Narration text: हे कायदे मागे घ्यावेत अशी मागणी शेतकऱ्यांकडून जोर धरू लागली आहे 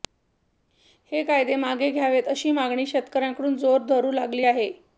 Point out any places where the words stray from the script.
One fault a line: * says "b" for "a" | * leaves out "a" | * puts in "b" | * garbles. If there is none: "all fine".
all fine